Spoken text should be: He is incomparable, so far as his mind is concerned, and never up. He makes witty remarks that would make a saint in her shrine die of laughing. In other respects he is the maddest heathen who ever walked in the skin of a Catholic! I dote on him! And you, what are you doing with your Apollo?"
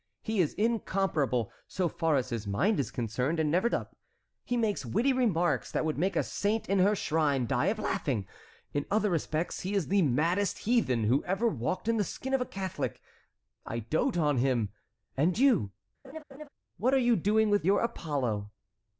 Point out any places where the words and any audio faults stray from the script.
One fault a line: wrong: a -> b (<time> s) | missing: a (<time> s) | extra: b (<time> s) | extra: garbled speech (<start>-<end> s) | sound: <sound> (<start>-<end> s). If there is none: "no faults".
sound: laugh (16.0-16.5 s)